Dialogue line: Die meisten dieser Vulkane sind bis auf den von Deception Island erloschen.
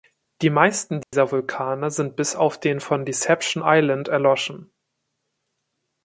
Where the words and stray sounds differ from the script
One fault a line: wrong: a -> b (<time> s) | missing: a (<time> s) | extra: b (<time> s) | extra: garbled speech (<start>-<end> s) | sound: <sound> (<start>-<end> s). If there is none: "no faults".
sound: dropout (1.0-1.1 s)